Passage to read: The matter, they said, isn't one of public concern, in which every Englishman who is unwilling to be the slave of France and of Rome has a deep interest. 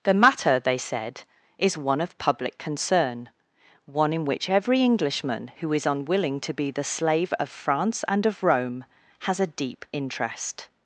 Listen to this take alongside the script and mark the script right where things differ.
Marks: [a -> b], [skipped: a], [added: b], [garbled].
The matter, they said, [isn't -> is] one of public concern, [added: one] in which every Englishman who is unwilling to be the slave of France and of Rome has a deep interest.